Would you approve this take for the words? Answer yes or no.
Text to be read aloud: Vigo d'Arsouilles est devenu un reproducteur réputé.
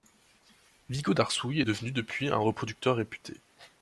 no